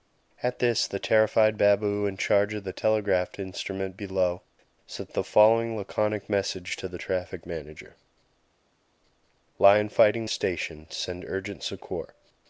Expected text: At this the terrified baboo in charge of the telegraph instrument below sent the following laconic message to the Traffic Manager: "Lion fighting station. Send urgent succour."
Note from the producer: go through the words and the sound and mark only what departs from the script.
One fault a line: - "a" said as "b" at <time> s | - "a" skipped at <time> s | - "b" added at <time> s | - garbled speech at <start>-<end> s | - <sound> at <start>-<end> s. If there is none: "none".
none